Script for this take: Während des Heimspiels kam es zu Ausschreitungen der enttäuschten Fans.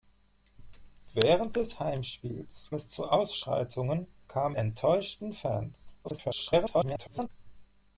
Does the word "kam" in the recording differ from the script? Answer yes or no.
yes